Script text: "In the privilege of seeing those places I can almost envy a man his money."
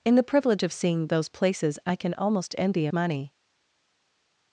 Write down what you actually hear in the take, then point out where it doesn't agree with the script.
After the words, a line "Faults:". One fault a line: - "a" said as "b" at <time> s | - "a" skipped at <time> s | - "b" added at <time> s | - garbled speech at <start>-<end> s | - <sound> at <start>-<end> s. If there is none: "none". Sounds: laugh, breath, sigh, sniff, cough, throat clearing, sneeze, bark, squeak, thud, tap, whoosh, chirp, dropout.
"In the privilege of seeing those places I can almost envy a money."
Faults:
- "man his" skipped at 2.9 s